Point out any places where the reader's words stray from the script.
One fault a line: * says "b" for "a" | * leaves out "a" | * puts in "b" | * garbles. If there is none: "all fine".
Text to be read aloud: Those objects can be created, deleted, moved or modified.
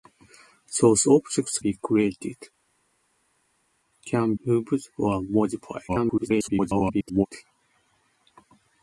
* leaves out "can"
* says "can" for "deleted"
* garbles